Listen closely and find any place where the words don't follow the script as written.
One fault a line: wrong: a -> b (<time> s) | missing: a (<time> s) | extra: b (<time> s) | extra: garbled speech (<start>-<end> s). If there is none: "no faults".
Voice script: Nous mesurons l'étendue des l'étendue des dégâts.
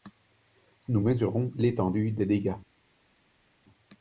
missing: l'étendue des (2.3 s)